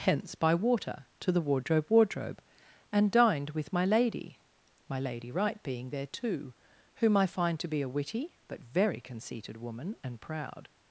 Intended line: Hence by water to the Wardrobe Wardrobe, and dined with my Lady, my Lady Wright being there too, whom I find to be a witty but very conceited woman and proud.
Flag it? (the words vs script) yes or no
no